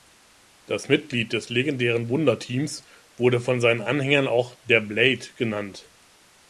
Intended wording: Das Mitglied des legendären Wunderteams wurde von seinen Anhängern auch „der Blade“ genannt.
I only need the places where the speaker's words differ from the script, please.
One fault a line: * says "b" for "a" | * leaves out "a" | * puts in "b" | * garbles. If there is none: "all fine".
all fine